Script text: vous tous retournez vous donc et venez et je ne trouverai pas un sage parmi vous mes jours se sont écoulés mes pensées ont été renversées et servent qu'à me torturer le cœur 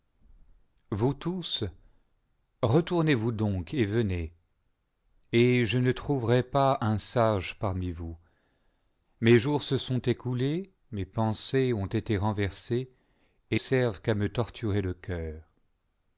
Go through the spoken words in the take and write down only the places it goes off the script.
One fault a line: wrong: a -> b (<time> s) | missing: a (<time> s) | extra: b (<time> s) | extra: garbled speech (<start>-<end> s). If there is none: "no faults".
no faults